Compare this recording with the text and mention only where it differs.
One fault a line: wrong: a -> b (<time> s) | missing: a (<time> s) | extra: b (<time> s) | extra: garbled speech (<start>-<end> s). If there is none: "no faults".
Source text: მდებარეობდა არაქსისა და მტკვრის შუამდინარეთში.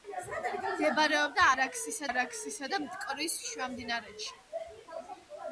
extra: არაქსისა (2.1 s)